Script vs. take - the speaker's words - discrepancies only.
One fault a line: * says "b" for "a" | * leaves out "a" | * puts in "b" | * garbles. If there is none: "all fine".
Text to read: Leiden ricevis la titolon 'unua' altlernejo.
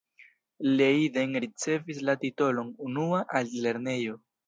all fine